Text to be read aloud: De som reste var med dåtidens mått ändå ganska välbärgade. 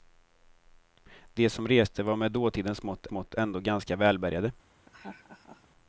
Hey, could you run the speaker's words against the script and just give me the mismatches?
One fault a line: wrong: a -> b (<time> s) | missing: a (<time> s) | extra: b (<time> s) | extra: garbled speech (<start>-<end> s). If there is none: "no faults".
extra: mått (3.1 s)